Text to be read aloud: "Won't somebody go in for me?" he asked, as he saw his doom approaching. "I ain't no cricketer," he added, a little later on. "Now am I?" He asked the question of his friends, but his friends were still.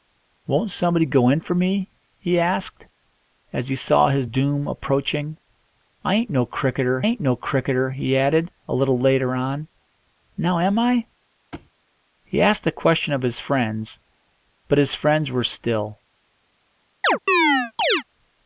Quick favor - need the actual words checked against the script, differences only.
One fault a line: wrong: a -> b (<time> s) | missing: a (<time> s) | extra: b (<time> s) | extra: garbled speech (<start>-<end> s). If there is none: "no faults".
extra: ain't no cricketer (7.1 s)